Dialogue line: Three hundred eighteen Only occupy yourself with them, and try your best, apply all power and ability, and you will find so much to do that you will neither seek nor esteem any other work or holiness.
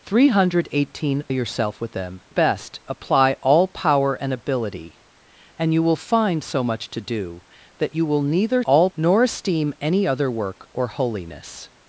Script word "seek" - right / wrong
wrong